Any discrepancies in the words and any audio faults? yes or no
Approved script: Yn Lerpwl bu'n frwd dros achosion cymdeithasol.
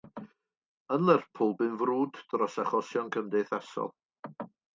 no